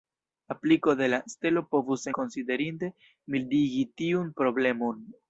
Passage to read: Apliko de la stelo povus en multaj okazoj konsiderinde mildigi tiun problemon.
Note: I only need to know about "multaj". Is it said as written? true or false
false